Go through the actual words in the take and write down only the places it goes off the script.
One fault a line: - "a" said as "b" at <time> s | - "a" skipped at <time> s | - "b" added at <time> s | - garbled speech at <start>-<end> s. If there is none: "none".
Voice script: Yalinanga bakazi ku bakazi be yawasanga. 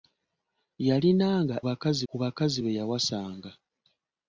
none